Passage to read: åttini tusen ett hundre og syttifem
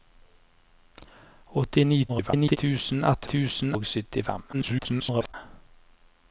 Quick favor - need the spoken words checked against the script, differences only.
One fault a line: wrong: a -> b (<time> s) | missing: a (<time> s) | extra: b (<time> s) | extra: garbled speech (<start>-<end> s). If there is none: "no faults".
extra: garbled speech (2.1-2.6 s)
wrong: hundre -> tusen (3.3 s)
extra: garbled speech (4.5-5.3 s)